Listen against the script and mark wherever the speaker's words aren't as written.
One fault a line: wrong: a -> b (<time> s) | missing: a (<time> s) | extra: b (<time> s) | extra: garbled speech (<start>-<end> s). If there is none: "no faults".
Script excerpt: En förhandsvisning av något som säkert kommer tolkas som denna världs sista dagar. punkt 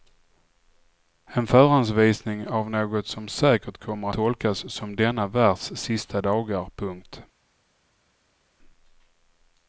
no faults